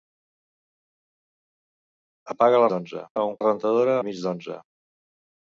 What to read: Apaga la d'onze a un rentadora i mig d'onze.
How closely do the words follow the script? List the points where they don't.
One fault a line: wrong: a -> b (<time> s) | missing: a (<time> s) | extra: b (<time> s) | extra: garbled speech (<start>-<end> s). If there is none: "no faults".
no faults